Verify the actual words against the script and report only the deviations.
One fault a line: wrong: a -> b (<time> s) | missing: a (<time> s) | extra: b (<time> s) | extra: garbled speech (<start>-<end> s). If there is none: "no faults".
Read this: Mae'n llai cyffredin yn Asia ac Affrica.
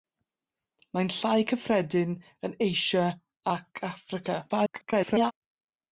extra: garbled speech (4.5-5.3 s)